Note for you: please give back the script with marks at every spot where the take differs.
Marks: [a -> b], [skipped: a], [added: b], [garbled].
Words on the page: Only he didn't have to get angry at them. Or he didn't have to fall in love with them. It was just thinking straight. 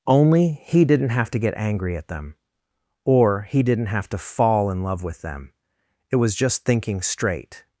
Only he didn't have to get angry at them. Or he didn't have to fall in love with them. It was just thinking straight.